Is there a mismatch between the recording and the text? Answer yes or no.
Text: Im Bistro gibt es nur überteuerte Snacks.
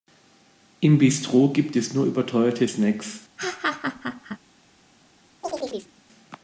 no